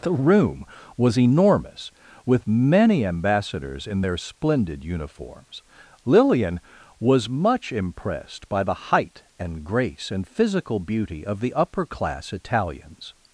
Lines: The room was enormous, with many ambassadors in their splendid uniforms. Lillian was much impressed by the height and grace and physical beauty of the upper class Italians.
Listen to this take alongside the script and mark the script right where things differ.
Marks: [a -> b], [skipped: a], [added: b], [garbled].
The room was enormous, with many ambassadors in their splendid uniforms. Lillian was much impressed by the height and grace and physical beauty of the upper class Italians.